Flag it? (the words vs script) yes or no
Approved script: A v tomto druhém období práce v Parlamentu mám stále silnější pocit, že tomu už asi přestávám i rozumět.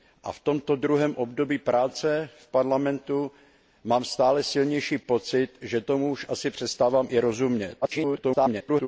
yes